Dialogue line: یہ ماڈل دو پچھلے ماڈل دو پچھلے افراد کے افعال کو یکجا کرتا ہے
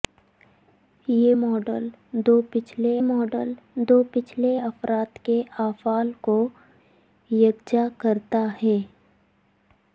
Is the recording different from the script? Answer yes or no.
no